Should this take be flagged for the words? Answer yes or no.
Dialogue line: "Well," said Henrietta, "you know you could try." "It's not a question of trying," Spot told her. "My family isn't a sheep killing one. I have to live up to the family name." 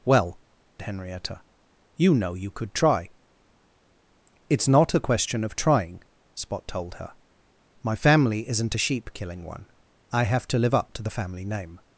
yes